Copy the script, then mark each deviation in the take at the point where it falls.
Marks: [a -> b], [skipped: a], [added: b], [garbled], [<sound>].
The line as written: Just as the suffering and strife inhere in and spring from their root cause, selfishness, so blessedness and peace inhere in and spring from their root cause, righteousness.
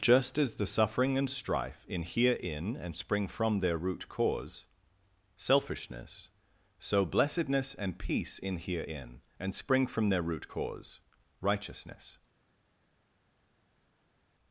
Just as the suffering and strife inhere in and spring from their root cause, selfishness, so blessedness and peace inhere in and spring from their root cause, righteousness.